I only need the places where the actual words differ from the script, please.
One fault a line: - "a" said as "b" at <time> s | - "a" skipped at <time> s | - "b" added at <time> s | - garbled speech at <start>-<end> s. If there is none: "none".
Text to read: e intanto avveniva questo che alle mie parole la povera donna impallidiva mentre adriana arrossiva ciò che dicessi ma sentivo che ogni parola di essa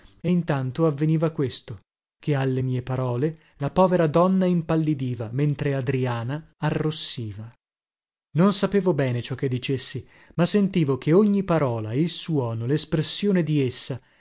- "non sapevo bene" added at 8.3 s
- "il suono lespressione" added at 11.9 s